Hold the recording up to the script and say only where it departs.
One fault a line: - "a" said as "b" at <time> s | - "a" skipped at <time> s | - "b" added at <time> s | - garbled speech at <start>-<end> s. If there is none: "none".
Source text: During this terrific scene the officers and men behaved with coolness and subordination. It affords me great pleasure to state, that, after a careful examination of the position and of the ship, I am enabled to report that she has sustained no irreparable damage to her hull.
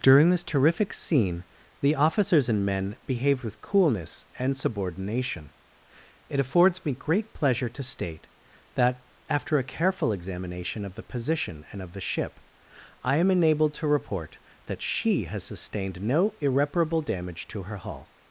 none